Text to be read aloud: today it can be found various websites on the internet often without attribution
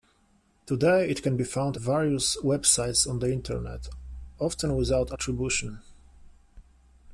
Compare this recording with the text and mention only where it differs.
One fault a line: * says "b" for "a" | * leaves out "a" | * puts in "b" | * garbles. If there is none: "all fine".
all fine